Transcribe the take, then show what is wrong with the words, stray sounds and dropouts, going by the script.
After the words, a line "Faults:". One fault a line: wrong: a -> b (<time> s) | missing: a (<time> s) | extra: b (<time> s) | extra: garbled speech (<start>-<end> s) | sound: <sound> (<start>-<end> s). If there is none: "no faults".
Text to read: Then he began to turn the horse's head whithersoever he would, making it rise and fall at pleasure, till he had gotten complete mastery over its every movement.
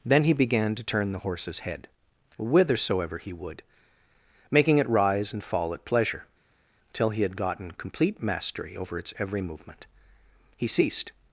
Then he began to turn the horse's head whithersoever he would, making it rise and fall at pleasure, till he had gotten complete mastery over its every movement. He ceased
Faults:
extra: He ceased (10.6 s)